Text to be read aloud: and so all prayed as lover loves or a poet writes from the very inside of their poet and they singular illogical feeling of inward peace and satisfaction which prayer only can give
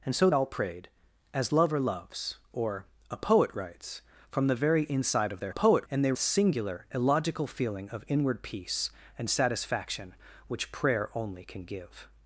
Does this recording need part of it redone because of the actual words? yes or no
no